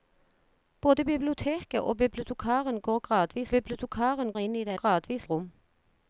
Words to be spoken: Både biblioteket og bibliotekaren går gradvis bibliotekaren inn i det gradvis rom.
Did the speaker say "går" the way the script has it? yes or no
yes